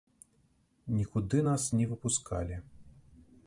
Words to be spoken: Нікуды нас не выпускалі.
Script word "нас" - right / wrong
right